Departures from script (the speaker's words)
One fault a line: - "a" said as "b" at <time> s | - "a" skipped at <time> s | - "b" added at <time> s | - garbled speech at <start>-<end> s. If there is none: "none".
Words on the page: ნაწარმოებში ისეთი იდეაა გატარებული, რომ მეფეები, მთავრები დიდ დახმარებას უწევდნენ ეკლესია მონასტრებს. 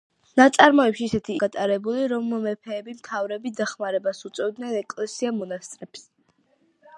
- "იდეაა" skipped at 1.3 s
- "დიდ" skipped at 3.5 s